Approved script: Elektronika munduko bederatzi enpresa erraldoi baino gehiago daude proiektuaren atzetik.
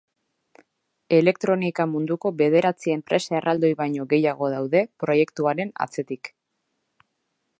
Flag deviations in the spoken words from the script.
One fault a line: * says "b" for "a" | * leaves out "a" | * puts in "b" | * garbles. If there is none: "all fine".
all fine